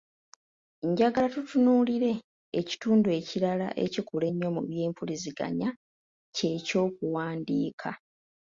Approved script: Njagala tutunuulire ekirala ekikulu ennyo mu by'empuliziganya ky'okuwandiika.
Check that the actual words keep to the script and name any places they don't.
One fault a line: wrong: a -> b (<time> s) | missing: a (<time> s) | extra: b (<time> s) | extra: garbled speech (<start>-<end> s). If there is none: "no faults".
extra: ekitundu (2.6 s)
extra: kye (6.4 s)